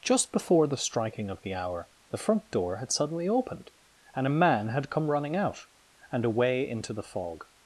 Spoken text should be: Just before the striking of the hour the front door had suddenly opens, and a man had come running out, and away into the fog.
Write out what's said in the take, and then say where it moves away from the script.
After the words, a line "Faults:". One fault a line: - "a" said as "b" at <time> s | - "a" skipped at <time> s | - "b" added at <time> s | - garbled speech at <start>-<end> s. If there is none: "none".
Just before the striking of the hour the front door had suddenly opened, and a man had come running out, and away into the fog.
Faults:
- "opens" said as "opened" at 3.3 s